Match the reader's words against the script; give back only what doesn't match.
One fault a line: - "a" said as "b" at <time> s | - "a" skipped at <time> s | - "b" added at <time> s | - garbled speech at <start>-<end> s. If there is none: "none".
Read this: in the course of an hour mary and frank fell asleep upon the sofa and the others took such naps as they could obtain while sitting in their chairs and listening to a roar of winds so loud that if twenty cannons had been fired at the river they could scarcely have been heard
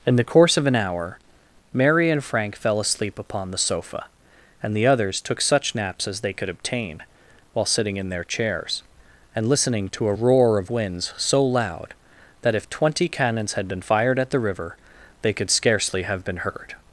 none